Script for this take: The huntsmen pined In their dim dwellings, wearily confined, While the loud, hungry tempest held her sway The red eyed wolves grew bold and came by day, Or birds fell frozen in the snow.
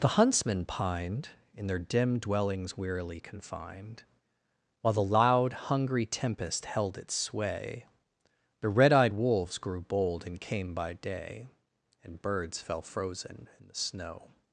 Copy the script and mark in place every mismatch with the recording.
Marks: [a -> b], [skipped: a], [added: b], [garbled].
The huntsmen pined In their dim dwellings, wearily confined, While the loud, hungry tempest held [her -> its] sway The red eyed wolves grew bold and came by day, [Or -> And] birds fell frozen in the snow.